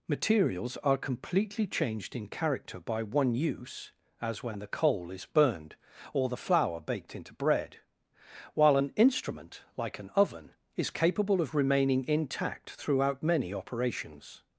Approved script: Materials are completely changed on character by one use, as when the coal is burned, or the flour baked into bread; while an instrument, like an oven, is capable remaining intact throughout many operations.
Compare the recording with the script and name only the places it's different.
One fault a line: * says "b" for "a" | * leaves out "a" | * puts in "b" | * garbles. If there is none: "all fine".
* says "in" for "on"
* puts in "of"